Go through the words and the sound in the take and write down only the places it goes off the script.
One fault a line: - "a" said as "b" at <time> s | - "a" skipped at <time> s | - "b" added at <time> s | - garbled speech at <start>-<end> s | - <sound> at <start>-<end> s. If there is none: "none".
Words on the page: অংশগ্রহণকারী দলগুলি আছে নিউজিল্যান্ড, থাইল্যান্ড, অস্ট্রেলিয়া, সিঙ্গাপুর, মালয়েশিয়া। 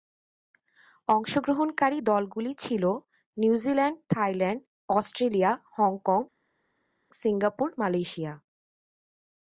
- "আছে" said as "ছিল" at 2.6 s
- "হংকং" added at 5.8 s